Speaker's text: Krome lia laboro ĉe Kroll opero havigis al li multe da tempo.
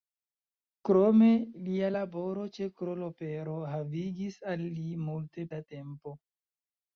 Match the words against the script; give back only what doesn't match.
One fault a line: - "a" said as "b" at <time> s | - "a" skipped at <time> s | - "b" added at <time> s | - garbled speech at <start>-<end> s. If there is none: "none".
none